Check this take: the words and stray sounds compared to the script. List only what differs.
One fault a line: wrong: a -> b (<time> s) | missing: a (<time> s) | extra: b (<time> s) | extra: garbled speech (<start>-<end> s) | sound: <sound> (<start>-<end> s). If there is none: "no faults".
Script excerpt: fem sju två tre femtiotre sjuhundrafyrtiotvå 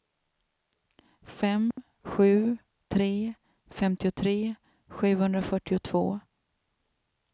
sound: dropout (1.7-1.8 s)
missing: två (2.6 s)